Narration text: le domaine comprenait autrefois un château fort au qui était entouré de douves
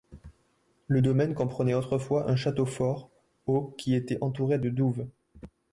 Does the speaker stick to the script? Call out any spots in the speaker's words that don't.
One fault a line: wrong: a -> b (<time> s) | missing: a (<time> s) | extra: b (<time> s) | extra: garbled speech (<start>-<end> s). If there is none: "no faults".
no faults